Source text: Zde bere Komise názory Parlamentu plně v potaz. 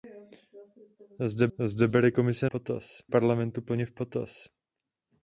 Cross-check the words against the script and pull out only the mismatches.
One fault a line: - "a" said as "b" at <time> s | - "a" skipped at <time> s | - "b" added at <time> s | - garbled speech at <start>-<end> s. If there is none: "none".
- "zde" added at 1.6 s
- "názory" said as "potaz" at 2.5 s